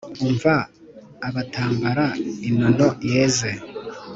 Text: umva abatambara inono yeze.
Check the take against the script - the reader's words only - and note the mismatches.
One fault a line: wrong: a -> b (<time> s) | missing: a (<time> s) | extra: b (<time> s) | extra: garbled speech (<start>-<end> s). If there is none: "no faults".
no faults